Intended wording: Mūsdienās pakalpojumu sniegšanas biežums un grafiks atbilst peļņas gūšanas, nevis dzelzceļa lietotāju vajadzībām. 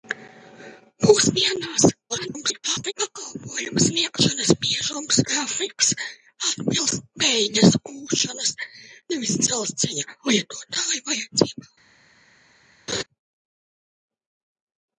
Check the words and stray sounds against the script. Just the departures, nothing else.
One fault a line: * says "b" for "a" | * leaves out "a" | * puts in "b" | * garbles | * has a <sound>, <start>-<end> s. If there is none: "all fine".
* garbles
* leaves out "un"
* has a laugh, 12.9-13.0 s